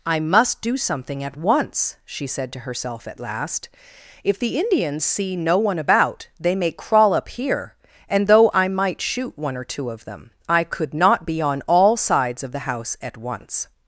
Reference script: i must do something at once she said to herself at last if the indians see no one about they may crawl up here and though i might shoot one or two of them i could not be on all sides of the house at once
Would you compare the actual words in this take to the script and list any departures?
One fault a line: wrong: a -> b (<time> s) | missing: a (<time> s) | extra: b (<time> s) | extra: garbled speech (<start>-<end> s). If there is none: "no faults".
no faults